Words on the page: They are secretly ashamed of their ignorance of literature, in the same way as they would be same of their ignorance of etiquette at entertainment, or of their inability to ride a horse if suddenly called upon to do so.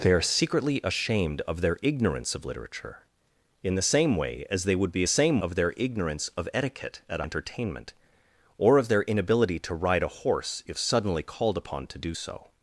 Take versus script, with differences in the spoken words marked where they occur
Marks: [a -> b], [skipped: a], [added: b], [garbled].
They are secretly ashamed of their ignorance of literature, in the same way as they would be same of their ignorance of etiquette at entertainment, or of their inability to ride a horse if suddenly called upon to do so.